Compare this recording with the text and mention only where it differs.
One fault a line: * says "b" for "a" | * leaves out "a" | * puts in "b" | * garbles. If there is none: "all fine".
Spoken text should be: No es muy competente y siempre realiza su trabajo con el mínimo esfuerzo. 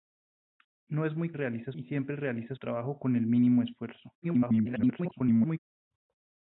* says "realiza" for "competente"
* leaves out "su"
* garbles